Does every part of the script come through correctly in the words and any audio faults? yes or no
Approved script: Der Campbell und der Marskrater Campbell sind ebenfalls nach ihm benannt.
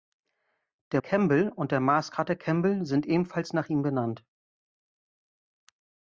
yes